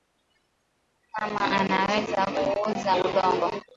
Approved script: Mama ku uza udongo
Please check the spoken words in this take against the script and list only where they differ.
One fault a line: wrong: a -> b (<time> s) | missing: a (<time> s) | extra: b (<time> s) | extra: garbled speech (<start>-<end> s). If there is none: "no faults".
extra: anaweza (1.6 s)